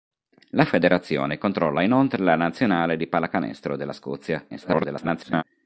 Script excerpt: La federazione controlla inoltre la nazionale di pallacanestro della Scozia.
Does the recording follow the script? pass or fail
fail